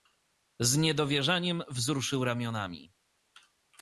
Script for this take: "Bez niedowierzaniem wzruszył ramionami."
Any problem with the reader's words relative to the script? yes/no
yes